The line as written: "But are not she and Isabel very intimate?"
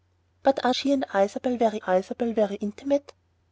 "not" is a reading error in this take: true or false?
true